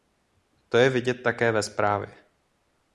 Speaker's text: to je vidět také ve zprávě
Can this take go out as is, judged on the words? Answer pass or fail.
pass